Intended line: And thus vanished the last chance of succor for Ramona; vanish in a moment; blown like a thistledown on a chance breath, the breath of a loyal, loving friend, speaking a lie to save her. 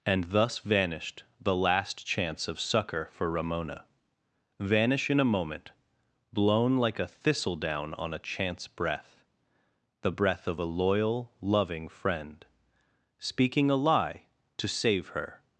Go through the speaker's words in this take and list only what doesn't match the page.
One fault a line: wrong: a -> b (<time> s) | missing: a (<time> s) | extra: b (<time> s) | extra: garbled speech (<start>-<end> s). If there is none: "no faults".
no faults